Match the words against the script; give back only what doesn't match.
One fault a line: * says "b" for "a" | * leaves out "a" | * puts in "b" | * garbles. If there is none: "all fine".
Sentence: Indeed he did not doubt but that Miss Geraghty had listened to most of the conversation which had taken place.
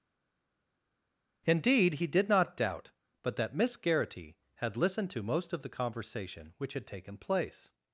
all fine